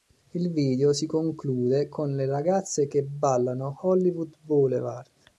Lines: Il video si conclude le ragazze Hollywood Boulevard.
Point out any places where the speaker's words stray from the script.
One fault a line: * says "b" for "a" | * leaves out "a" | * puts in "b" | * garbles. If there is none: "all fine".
* puts in "con"
* puts in "che ballano"